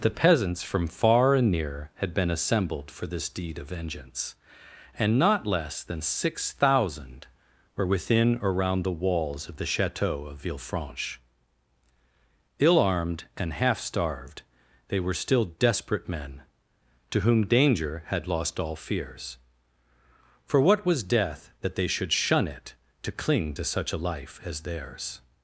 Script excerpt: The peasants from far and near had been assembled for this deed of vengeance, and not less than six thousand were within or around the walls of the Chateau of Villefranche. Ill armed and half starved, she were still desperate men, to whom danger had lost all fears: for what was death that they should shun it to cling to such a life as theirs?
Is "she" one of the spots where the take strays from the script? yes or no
yes